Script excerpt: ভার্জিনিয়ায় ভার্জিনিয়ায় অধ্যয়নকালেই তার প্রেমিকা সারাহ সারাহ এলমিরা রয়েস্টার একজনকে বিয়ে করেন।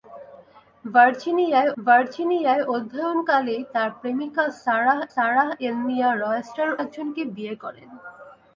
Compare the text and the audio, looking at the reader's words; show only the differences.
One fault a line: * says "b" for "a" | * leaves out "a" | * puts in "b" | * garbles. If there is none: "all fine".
all fine